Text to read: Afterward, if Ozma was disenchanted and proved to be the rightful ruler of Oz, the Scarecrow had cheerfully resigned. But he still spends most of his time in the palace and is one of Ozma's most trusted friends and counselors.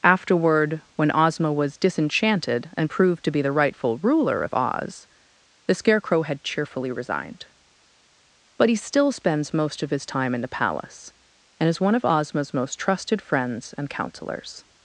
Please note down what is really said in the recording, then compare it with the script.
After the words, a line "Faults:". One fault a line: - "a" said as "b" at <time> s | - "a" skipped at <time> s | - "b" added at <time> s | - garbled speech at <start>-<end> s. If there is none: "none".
Afterward, when Ozma was disenchanted and proved to be the rightful ruler of Oz, the Scarecrow had cheerfully resigned. But he still spends most of his time in the palace and is one of Ozma's most trusted friends and counselors.
Faults:
- "if" said as "when" at 0.9 s